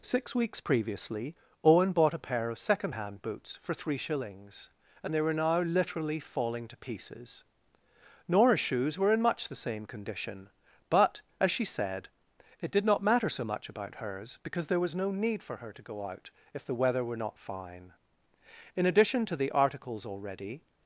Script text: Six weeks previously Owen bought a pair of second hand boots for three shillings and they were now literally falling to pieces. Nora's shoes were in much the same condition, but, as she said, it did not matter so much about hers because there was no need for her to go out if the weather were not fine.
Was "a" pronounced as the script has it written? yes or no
yes